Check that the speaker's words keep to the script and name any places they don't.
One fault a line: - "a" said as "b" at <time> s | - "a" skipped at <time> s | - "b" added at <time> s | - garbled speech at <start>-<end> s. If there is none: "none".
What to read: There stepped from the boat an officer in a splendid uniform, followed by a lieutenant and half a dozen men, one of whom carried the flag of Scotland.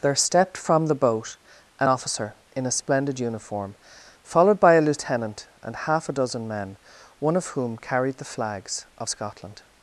- "flag" said as "flags" at 8.2 s